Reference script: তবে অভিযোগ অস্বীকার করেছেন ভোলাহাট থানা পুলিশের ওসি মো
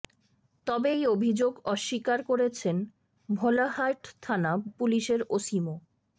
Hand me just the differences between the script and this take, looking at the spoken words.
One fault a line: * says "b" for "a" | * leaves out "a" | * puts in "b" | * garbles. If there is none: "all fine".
* puts in "এই"